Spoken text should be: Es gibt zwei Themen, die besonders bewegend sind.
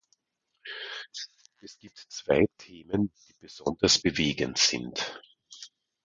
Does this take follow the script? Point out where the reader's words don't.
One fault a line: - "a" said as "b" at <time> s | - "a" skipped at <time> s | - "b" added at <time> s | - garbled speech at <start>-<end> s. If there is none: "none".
none